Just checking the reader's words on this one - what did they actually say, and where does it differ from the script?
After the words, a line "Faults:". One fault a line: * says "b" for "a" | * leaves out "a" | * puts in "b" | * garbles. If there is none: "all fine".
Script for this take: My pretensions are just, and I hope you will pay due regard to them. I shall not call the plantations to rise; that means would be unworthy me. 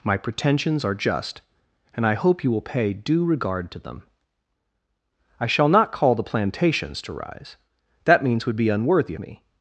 My pretensions are just, and I hope you will pay due regard to them. I shall not call the plantations to rise; that means would be unworthy me.
Faults:
all fine